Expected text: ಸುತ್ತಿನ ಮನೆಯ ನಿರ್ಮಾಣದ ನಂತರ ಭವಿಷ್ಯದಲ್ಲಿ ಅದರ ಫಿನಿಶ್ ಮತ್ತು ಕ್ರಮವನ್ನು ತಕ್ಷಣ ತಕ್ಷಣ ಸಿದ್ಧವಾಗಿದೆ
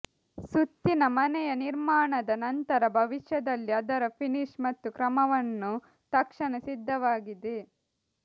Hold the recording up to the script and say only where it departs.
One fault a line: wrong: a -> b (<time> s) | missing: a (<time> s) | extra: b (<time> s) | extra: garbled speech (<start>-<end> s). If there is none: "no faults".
missing: ತಕ್ಷಣ (6.5 s)